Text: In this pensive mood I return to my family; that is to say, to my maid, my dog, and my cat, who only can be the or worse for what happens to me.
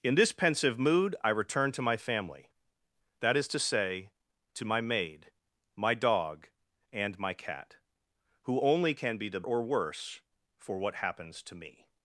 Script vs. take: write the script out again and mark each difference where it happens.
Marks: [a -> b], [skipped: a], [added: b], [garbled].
In this pensive mood I return to my family; that is to say, to my maid, my dog, and my cat, who only can be the or worse for what happens to me.